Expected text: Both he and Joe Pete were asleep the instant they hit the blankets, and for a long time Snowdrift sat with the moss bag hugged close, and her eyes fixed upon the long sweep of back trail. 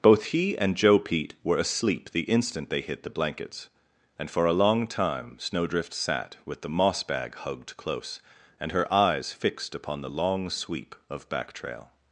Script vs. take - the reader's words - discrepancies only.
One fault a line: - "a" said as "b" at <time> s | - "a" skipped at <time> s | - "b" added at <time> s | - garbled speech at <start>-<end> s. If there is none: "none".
none